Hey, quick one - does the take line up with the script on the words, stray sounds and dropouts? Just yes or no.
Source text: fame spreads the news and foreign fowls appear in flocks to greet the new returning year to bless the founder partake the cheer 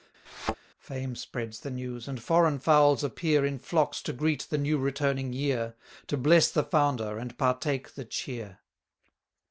no